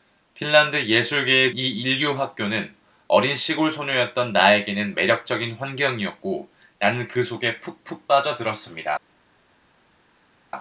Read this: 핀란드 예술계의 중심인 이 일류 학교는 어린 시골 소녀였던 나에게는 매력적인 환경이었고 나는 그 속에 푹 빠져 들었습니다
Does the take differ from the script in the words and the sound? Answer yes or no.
yes